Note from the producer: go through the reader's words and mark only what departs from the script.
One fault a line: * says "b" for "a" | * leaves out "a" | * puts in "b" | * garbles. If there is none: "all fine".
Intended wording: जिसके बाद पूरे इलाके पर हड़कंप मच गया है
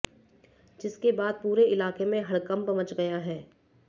* says "में" for "पर"